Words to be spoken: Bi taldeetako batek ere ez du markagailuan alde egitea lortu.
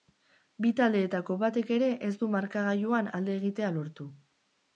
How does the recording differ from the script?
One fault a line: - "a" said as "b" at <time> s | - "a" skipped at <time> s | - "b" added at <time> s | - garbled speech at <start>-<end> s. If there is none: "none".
none